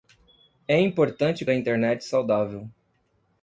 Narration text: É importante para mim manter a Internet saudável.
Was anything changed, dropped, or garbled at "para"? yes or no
yes